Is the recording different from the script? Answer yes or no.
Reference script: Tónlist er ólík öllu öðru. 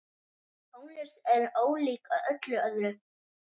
no